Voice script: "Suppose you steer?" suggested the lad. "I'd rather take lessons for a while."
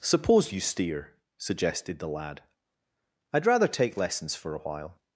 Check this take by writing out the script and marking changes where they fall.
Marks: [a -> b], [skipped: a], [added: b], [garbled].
"Suppose you steer?" suggested the lad. "I'd rather take lessons for a while."